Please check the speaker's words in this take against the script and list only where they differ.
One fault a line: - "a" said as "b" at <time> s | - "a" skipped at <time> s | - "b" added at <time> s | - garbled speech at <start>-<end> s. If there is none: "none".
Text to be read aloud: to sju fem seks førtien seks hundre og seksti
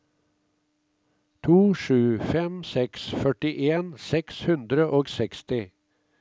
none